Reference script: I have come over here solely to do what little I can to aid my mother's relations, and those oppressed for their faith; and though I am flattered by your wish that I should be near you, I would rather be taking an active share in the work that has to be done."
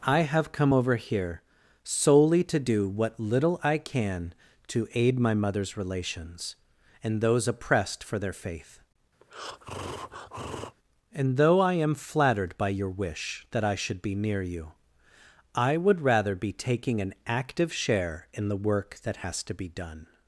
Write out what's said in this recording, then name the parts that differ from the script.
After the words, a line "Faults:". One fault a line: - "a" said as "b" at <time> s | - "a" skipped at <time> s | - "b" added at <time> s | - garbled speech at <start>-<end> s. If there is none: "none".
I have come over here solely to do what little I can to aid my mother's relations, and those oppressed for their faith; and though I am flattered by your wish that I should be near you, I would rather be taking an active share in the work that has to be done."
Faults:
none